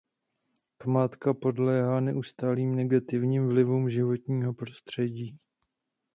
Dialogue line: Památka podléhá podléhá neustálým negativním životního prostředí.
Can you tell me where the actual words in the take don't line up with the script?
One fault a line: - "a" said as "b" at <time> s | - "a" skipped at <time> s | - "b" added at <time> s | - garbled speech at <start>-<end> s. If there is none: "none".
- "podléhá" skipped at 2.0 s
- "vlivům" added at 3.5 s